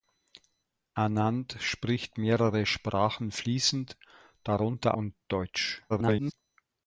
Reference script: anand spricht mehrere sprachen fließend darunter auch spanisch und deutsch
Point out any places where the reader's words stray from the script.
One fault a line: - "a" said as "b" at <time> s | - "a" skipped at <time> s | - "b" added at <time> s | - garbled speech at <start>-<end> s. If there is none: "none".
- "auch spanisch" skipped at 5.0 s
- garbled speech at 5.9-6.3 s